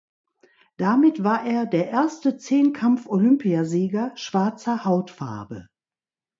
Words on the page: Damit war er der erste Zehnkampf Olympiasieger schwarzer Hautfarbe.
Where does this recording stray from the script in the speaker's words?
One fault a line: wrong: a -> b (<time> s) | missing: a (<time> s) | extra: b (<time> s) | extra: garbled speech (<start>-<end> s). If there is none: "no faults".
no faults